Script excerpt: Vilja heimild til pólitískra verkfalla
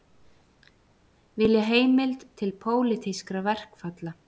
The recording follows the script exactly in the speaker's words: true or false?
true